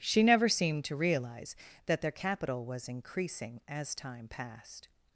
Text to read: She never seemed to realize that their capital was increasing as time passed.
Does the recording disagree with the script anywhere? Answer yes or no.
no